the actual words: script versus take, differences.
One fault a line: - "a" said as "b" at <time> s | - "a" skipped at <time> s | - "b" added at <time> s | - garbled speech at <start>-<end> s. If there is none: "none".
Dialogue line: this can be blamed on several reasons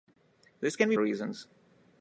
- "blamed on several" skipped at 0.9 s